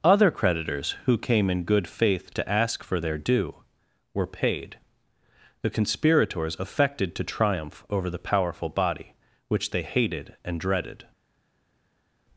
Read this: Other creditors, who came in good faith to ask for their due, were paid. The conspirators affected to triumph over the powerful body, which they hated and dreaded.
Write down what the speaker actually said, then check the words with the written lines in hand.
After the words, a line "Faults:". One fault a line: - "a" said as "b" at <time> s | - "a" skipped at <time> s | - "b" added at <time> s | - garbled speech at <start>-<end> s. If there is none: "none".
Other creditors, who came in good faith to ask for their due, were paid. The conspirators affected to triumph over the powerful body, which they hated and dreaded.
Faults:
none